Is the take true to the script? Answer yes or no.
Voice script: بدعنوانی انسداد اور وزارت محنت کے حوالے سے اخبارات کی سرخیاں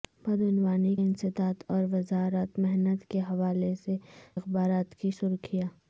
yes